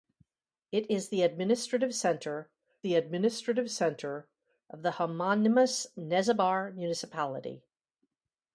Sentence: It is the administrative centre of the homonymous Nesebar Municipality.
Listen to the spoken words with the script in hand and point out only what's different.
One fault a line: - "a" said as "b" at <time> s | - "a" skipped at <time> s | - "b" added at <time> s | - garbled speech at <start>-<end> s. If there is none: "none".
- "the administrative centre" added at 2.8 s